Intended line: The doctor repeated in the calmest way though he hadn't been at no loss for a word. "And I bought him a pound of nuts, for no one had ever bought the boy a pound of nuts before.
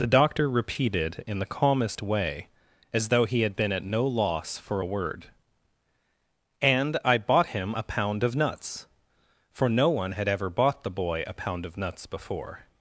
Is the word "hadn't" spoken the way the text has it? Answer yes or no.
no